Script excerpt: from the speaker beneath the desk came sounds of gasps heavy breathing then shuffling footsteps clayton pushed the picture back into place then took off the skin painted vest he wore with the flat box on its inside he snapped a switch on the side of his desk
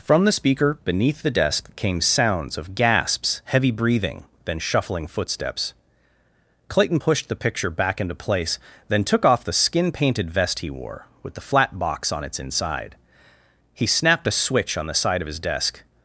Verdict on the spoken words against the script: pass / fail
pass